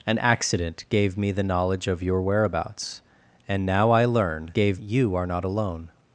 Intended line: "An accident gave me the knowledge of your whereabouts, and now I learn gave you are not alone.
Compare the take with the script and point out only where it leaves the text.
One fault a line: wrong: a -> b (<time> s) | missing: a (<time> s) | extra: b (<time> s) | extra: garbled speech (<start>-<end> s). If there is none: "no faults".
no faults